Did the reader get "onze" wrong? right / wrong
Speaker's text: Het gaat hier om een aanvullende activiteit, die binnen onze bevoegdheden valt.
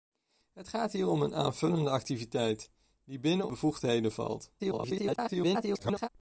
wrong